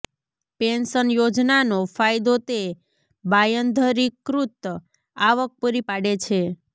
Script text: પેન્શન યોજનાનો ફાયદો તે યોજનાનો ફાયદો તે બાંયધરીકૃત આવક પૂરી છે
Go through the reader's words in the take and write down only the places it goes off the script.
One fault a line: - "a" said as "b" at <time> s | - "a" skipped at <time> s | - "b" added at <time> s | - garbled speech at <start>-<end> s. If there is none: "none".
- "યોજનાનો ફાયદો તે" skipped at 2.6 s
- "પાડે" added at 5.9 s